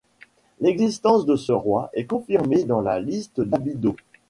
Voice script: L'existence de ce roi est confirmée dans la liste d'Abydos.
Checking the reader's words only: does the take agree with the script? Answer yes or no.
yes